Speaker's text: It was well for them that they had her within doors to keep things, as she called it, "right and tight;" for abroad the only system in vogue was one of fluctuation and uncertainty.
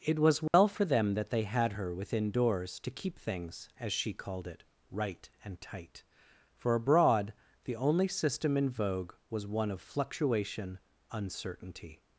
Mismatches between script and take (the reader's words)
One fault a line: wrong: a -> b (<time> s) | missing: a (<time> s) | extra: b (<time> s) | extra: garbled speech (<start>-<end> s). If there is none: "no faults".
missing: and (10.8 s)